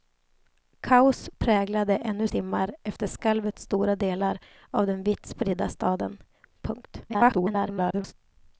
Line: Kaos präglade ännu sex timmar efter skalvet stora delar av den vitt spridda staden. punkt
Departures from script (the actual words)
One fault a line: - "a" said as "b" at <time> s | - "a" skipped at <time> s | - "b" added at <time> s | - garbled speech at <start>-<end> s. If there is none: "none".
- "sex" skipped at 2.3 s
- garbled speech at 7.1-8.1 s